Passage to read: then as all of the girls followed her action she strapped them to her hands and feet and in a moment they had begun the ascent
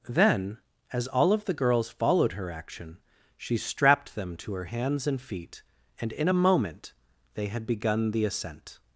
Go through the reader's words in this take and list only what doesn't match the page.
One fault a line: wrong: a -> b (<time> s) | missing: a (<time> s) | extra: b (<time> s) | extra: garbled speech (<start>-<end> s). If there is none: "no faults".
no faults